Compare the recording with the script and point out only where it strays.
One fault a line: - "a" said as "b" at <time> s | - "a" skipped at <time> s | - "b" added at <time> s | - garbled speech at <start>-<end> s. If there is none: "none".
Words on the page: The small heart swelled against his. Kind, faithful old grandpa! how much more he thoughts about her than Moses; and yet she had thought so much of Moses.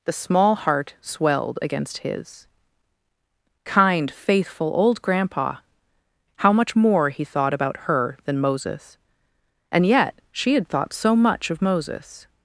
- "thoughts" said as "thought" at 7.2 s